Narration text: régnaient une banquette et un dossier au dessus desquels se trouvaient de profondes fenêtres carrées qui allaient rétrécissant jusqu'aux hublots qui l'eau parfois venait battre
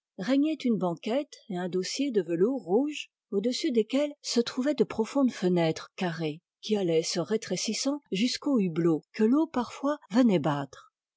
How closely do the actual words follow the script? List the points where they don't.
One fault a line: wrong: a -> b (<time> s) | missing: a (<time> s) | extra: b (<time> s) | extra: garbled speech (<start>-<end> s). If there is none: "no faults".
extra: de velours rouge (2.1 s)
extra: se (7.0 s)
wrong: qui -> que (9.1 s)